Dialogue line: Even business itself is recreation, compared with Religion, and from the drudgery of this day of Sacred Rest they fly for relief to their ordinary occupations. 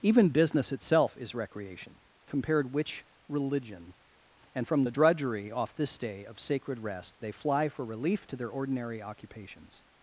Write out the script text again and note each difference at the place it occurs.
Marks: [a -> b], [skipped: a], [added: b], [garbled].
Even business itself is recreation, compared [with -> which] Religion, and from the drudgery [of -> off] this day of Sacred Rest they fly for relief to their ordinary occupations.